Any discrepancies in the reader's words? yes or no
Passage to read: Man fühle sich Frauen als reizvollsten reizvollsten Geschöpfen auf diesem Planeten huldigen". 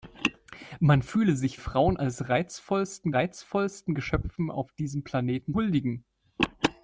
no